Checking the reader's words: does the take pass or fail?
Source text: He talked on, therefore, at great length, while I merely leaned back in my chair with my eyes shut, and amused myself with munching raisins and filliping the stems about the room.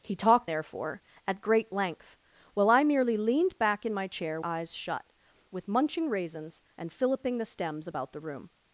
fail